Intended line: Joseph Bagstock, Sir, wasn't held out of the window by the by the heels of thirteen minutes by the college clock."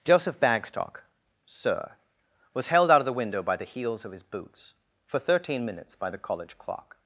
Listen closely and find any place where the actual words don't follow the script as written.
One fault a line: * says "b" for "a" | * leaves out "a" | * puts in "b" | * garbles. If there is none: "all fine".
* says "was" for "wasn't"
* says "heels of his boots for" for "by the heels of"